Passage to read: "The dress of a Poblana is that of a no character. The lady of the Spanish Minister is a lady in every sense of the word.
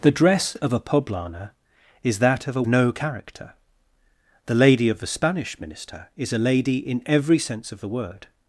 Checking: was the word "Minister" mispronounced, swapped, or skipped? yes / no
no